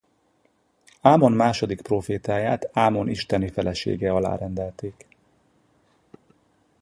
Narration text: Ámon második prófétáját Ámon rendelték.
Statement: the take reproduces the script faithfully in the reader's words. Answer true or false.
false